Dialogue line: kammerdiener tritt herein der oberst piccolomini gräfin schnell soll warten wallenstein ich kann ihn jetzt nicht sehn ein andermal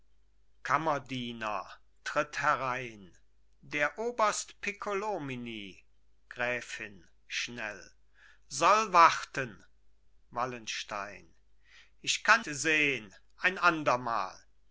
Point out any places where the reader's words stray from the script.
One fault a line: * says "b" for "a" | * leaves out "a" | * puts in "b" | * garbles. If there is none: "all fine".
* leaves out "ihn jetzt nicht"